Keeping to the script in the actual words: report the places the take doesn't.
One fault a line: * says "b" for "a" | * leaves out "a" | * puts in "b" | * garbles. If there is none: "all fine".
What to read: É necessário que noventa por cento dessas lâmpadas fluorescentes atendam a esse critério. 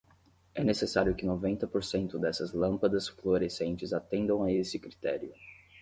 all fine